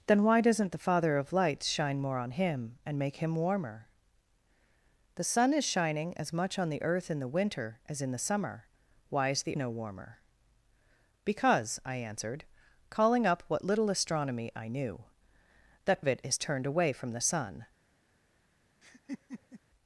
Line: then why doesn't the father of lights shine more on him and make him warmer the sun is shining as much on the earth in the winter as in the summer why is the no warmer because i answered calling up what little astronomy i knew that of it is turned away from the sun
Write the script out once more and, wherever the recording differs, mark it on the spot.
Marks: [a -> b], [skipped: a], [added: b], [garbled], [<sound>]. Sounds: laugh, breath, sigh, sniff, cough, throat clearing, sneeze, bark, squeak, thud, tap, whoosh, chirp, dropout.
then why doesn't the father of lights shine more on him and make him warmer the sun is shining as much on the earth in the winter as in the summer why is the no warmer because i answered calling up what little astronomy i knew that of it is turned away from the sun [laugh]